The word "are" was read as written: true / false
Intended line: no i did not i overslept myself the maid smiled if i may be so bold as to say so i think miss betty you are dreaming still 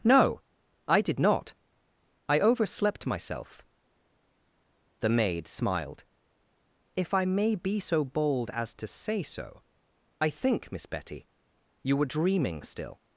false